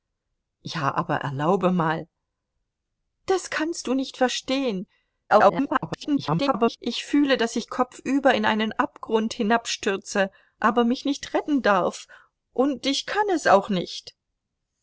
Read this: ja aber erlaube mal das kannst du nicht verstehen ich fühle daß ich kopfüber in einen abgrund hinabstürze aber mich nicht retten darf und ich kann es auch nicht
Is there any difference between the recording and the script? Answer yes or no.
yes